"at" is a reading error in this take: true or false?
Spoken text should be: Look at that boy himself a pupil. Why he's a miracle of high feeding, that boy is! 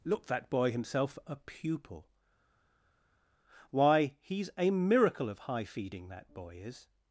true